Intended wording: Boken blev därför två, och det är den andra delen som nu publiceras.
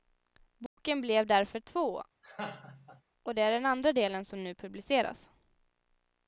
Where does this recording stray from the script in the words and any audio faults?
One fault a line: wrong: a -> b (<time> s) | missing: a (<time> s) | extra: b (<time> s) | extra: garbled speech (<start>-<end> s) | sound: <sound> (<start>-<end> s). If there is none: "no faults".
sound: dropout (0.7-0.8 s)
sound: laugh (2.2-3.0 s)